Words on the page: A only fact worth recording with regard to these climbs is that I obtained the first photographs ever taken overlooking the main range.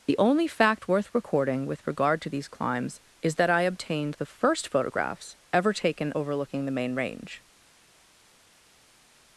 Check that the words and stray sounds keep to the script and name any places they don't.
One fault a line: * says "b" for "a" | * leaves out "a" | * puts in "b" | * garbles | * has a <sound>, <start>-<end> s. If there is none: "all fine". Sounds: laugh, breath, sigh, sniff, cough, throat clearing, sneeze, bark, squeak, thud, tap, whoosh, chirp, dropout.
* says "The" for "A"